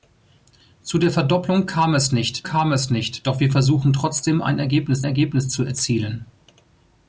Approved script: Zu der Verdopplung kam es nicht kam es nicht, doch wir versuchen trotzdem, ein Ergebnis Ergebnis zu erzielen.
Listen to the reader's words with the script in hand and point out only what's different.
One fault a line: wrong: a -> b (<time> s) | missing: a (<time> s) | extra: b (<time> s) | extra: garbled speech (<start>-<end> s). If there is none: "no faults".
no faults